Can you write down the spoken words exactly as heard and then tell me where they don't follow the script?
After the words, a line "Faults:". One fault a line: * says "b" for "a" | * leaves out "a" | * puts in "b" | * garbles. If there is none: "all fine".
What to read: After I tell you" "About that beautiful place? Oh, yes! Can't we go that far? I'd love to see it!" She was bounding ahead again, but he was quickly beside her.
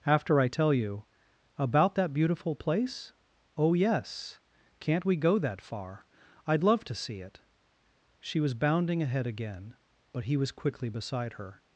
After I tell you" "About that beautiful place? Oh, yes! Can't we go that far? I'd love to see it!" She was bounding ahead again, but he was quickly beside her.
Faults:
all fine